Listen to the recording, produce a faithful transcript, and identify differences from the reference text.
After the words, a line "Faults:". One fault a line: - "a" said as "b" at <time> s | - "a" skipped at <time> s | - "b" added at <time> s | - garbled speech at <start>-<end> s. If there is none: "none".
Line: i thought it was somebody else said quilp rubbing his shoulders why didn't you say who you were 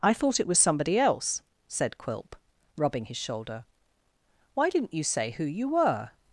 i thought it was somebody else said quilp rubbing his shoulder why didn't you say who you were
Faults:
- "shoulders" said as "shoulder" at 3.2 s